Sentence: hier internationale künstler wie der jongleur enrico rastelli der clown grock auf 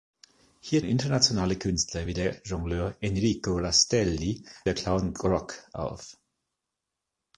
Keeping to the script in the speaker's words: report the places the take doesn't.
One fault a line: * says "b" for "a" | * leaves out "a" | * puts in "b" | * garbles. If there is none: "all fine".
all fine